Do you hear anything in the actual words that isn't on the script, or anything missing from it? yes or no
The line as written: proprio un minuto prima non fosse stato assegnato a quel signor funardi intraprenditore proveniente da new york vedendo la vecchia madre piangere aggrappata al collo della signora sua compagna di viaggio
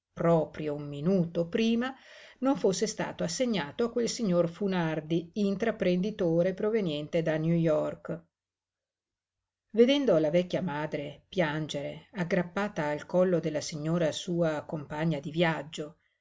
no